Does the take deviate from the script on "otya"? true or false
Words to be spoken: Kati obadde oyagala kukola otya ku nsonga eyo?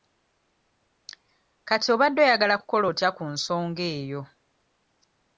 false